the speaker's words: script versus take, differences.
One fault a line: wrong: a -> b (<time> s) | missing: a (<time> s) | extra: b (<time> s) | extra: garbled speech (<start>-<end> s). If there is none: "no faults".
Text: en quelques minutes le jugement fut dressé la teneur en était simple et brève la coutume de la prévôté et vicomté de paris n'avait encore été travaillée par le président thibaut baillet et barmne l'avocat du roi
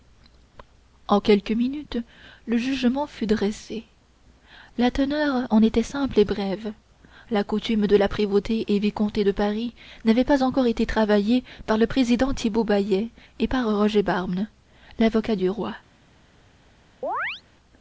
extra: pas (10.2 s)
extra: par roger (13.5 s)